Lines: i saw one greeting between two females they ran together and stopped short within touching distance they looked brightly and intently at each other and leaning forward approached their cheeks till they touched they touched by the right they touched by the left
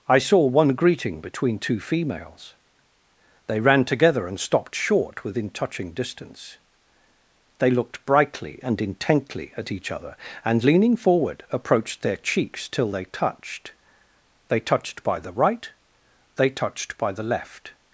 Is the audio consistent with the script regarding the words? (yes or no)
yes